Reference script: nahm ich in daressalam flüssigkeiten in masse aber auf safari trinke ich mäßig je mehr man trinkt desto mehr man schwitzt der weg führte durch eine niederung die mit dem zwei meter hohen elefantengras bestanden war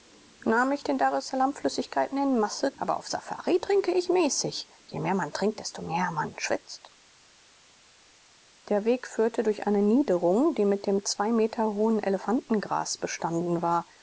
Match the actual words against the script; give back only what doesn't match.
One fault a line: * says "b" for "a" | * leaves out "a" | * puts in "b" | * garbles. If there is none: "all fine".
all fine